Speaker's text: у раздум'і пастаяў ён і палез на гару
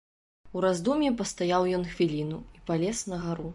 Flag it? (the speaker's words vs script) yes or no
yes